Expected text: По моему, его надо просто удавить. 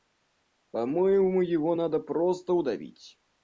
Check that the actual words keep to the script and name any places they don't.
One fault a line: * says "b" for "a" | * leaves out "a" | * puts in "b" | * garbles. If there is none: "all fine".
all fine